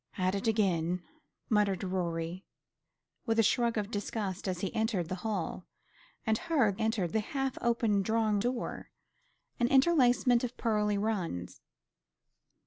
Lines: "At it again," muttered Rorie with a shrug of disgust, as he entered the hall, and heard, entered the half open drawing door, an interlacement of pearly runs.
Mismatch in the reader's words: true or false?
false